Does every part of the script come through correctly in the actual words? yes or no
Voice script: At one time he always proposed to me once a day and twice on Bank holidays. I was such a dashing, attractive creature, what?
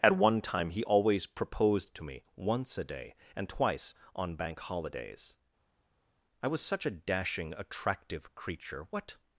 yes